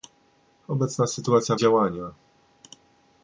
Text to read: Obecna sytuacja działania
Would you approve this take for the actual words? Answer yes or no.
yes